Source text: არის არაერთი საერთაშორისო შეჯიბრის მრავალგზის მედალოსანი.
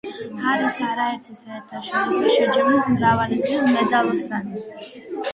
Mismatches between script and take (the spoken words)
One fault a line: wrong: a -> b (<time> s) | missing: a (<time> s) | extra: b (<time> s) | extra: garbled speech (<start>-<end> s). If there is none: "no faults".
no faults